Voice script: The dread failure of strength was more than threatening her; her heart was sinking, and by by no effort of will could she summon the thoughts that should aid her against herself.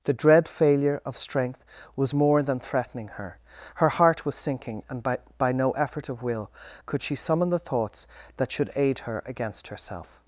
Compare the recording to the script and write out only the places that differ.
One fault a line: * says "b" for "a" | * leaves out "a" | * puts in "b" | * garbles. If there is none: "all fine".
all fine